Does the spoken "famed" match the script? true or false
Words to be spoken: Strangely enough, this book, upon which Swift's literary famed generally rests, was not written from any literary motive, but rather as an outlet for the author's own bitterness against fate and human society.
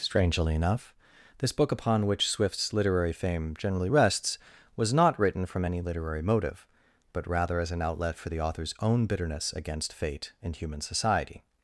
false